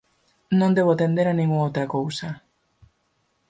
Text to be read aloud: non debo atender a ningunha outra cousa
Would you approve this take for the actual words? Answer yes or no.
yes